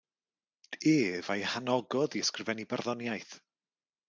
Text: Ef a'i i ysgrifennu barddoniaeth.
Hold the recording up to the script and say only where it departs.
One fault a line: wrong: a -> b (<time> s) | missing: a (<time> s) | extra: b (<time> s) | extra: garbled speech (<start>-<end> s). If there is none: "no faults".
extra: hanogodd (1.5 s)